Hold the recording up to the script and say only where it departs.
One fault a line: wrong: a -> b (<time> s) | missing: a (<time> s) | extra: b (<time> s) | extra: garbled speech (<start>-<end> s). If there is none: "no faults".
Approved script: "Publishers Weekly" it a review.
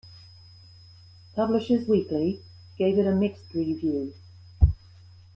extra: gave (2.8 s)
extra: mixed (3.1 s)